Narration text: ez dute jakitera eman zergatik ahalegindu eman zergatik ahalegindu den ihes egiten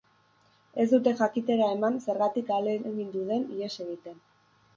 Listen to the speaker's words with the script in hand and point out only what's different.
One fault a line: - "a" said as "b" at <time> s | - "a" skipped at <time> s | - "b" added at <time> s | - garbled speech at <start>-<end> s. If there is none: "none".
- "eman zergatik ahalegindu" skipped at 3.2 s